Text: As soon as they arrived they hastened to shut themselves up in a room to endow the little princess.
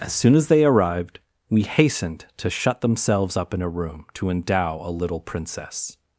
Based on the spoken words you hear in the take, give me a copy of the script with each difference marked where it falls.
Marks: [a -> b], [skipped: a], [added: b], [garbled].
As soon as they arrived [they -> we] hastened to shut themselves up in a room to endow [the -> a] little princess.